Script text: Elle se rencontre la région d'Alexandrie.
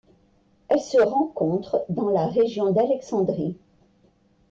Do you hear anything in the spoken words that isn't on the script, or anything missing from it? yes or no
yes